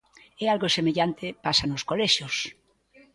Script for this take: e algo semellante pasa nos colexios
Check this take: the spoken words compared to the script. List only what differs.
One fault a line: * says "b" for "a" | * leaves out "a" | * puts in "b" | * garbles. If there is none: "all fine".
all fine